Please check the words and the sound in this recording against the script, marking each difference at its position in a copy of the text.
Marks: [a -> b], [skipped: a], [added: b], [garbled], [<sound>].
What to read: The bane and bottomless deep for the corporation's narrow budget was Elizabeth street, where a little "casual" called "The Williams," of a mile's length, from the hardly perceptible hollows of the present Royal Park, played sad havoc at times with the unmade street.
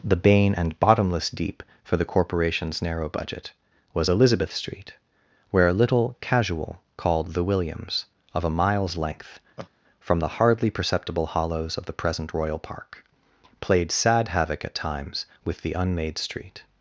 The bane and bottomless deep for the corporation's narrow budget was Elizabeth street, where a little "casual" called "The Williams," of a mile's length, [laugh] from the hardly perceptible hollows of the present Royal Park, played sad havoc at times with the unmade street.